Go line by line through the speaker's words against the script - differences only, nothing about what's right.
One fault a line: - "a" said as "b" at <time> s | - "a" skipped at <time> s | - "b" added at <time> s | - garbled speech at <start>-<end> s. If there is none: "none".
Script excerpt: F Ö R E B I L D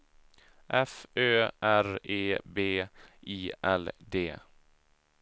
none